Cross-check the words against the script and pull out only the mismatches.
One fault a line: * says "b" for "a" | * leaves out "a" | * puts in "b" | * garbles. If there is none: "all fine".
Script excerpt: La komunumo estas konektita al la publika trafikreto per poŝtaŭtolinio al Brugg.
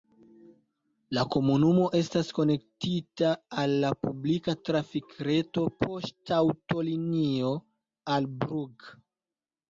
* leaves out "per"